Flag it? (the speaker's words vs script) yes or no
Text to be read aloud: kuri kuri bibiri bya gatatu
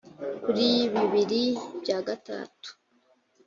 yes